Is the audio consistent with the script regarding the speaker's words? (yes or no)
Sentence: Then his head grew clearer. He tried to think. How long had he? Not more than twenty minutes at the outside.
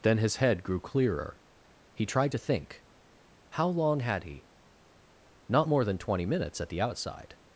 yes